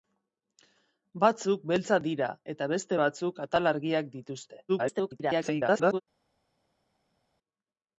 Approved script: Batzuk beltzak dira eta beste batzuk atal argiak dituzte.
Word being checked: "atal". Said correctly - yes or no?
yes